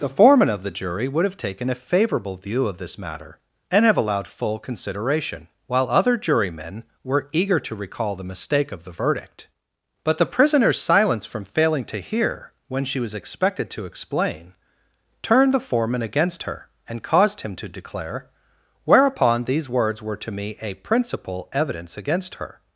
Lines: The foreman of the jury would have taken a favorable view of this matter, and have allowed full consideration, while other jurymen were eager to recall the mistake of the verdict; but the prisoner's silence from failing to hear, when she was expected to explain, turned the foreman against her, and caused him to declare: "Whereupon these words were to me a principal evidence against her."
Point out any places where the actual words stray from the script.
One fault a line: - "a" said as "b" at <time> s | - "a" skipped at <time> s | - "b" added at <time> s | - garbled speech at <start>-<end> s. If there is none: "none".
none